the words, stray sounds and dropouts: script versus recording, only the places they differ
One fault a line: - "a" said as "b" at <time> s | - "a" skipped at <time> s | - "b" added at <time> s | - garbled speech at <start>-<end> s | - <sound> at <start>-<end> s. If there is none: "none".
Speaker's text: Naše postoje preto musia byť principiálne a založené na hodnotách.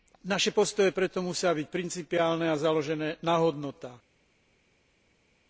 none